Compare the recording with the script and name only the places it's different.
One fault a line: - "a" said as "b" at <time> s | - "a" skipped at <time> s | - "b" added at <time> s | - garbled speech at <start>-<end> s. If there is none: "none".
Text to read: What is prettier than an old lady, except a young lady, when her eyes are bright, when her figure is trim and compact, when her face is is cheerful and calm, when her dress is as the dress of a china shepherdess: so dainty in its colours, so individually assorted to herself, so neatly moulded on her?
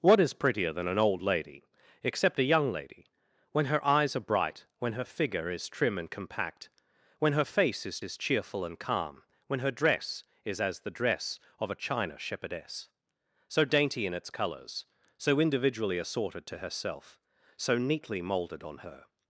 none